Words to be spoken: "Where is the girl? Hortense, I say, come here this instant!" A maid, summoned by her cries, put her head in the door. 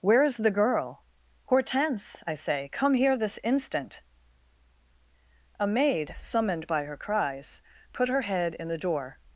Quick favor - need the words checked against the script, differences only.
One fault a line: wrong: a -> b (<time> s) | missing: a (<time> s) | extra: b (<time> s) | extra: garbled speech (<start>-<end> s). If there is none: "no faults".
no faults